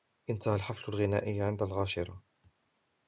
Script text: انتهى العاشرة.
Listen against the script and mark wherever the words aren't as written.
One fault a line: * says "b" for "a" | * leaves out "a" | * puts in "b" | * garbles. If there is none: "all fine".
* puts in "الحفل الغنائي عند"